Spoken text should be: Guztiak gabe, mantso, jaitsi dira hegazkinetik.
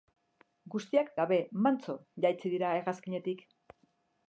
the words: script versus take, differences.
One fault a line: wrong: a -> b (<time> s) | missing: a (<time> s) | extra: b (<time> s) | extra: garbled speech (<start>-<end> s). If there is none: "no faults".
no faults